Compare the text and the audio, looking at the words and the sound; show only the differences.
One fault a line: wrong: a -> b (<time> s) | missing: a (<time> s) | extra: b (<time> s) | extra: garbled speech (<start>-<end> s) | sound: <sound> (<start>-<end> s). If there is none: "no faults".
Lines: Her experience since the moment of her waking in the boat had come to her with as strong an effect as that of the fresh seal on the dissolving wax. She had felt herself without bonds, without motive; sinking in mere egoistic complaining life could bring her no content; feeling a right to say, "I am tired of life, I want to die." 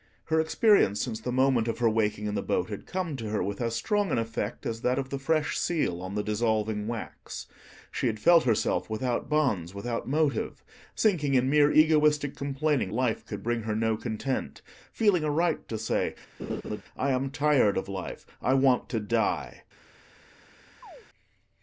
sound: laugh (16.4-16.8 s)
sound: chirp (20.8-21.1 s)